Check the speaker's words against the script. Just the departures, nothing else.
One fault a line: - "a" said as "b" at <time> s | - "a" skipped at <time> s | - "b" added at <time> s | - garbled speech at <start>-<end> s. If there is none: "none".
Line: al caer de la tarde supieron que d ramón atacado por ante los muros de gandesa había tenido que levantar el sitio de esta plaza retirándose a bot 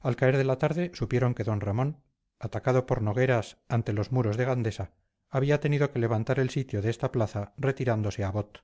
- "nogueras" added at 3.0 s